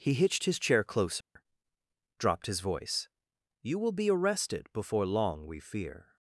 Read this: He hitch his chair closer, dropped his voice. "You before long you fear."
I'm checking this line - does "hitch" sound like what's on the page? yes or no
no